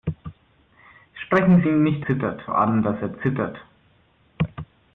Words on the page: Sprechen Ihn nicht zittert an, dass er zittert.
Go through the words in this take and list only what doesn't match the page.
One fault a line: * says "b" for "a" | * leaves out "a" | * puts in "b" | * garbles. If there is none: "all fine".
all fine